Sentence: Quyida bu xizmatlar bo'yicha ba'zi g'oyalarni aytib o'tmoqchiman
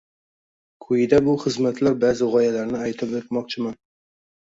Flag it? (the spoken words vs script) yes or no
yes